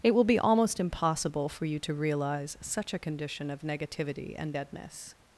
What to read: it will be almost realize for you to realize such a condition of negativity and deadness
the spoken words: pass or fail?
fail